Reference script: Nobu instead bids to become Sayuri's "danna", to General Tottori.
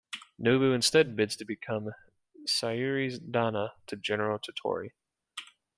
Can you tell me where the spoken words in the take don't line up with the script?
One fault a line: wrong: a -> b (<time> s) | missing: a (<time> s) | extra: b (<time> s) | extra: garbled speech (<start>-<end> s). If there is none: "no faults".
no faults